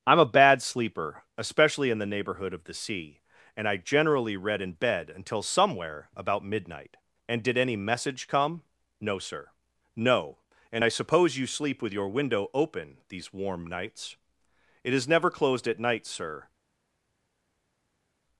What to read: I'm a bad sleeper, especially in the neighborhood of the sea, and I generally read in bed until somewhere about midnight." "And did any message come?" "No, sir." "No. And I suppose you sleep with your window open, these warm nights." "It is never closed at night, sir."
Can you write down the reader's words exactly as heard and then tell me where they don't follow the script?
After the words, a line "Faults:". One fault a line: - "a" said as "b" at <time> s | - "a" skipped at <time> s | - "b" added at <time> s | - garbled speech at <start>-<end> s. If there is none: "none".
I'm a bad sleeper, especially in the neighborhood of the sea, and I generally read in bed until somewhere about midnight." "And did any message come?" "No, sir." "No. And I suppose you sleep with your window open, these warm nights." "It is never closed at night, sir."
Faults:
none